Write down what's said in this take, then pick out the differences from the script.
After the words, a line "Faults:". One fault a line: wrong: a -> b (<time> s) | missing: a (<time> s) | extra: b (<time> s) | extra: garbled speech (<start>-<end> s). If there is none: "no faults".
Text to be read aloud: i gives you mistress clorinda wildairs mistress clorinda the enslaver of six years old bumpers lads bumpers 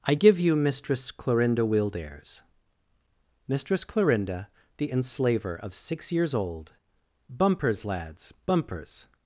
i give you mistress clorinda wildairs mistress clorinda the enslaver of six years old bumpers lads bumpers
Faults:
wrong: gives -> give (0.1 s)